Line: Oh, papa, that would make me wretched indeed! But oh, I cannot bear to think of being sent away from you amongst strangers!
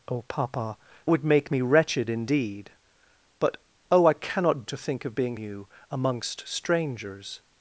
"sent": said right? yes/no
no